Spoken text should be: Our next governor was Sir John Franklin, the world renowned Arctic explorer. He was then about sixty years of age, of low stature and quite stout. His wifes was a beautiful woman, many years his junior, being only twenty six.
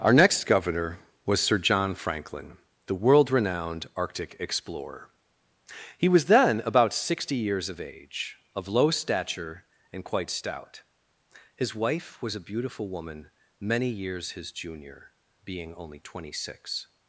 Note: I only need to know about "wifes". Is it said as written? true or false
false